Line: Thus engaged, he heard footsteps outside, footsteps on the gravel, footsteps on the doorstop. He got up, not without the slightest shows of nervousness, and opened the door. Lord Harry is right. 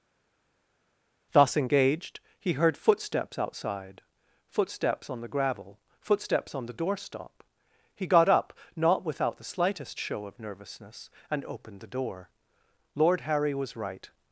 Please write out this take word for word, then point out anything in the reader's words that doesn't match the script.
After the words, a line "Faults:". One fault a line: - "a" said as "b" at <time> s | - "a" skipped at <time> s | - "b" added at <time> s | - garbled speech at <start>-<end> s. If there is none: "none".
Thus engaged, he heard footsteps outside, footsteps on the gravel, footsteps on the doorstop. He got up, not without the slightest show of nervousness, and opened the door. Lord Harry was right.
Faults:
- "shows" said as "show" at 10.0 s
- "is" said as "was" at 13.5 s